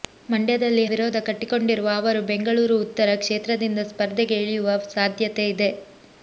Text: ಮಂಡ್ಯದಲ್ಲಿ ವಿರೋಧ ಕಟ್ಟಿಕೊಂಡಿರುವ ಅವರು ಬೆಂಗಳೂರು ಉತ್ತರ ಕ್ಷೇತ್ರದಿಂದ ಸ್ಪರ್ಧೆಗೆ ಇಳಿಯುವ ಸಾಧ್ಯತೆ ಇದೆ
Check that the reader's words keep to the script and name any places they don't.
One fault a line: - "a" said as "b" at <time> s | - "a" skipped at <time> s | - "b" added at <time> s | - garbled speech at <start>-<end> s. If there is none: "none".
none